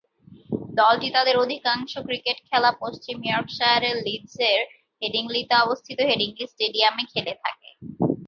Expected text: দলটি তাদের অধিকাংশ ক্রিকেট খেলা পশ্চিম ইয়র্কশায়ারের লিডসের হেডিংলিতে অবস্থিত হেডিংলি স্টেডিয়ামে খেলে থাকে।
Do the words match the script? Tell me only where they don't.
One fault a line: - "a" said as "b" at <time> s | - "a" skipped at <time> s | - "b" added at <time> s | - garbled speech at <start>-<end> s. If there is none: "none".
none